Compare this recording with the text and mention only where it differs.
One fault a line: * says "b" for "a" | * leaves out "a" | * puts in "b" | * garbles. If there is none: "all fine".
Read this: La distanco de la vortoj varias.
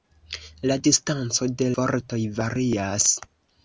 * leaves out "la"